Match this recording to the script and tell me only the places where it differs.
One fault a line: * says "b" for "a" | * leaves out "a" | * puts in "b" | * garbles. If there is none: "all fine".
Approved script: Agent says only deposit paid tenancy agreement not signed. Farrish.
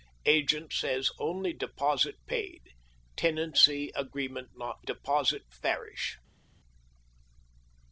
* says "deposit" for "signed"